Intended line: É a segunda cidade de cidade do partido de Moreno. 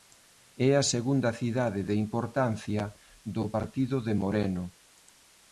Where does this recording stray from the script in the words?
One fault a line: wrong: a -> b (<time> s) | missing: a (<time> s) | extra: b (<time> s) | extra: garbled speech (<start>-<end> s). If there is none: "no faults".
wrong: cidade -> importancia (2.0 s)